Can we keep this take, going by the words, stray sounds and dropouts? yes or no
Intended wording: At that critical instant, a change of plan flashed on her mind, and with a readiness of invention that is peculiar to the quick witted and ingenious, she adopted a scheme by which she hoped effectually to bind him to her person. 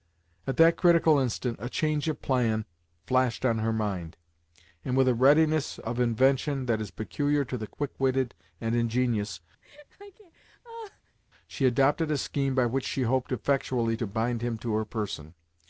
no